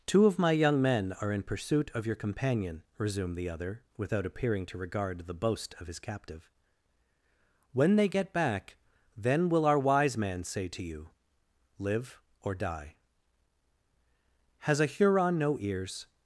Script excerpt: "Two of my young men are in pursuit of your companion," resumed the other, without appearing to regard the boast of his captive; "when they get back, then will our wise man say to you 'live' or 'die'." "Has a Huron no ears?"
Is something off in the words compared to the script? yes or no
no